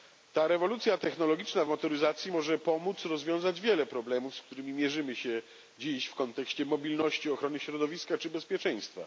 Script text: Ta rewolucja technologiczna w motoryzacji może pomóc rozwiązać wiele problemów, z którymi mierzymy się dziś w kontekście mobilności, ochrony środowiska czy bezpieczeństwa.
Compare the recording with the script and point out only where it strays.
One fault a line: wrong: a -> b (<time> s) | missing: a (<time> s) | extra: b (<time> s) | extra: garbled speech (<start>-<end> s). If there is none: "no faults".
no faults